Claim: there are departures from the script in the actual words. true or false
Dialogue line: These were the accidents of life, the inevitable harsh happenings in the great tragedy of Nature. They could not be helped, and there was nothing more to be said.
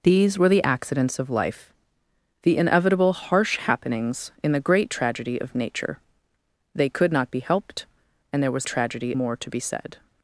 true